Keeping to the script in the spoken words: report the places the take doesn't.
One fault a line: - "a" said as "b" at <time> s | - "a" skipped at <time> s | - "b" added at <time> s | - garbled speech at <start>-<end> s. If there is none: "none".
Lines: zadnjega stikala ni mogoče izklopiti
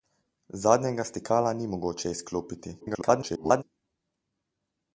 - garbled speech at 2.8-3.6 s